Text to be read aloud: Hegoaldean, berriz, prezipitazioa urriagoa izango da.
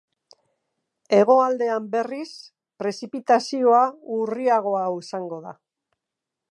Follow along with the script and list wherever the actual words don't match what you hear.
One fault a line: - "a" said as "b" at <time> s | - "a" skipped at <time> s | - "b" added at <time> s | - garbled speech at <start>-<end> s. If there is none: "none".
none